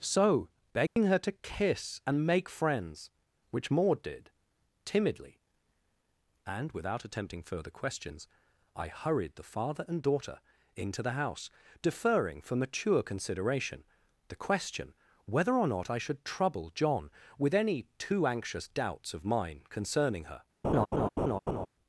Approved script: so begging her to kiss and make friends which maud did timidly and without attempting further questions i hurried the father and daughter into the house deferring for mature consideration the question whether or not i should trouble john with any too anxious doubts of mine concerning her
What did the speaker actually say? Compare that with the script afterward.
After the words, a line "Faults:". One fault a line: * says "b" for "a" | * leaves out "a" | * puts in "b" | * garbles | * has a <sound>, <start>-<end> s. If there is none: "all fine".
so begging her to kiss and make friends which maud did timidly and without attempting further questions i hurried the father and daughter into the house deferring for mature consideration the question whether or not i should trouble john with any too anxious doubts of mine concerning her
Faults:
* has a dropout, 0.9-1.0 s
* has a laugh, 20.6-21.7 s